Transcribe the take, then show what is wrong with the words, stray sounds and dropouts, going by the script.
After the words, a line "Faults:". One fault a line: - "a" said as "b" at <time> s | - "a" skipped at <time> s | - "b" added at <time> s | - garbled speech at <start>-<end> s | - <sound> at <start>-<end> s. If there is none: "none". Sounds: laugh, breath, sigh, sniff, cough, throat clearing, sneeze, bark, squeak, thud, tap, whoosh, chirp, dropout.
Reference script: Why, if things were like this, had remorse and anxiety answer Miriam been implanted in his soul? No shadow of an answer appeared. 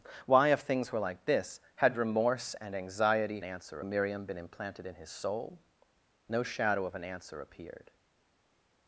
Why, if things were like this, had remorse and anxiety answer Miriam been implanted in his soul? No shadow of an answer appeared.
Faults:
none